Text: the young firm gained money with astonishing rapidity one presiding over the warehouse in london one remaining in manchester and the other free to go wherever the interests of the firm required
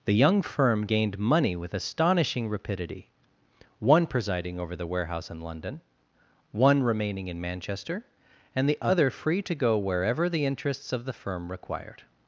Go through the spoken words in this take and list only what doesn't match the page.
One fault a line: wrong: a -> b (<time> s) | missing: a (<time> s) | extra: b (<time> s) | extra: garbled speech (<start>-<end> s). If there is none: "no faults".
no faults